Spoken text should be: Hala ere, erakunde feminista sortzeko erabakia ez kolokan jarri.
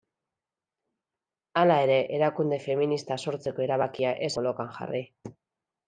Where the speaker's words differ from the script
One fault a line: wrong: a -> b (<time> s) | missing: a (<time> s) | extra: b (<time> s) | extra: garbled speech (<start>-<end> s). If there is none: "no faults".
no faults